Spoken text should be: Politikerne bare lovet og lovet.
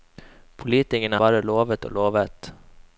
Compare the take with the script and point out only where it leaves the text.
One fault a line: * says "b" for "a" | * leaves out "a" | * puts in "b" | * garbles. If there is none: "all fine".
all fine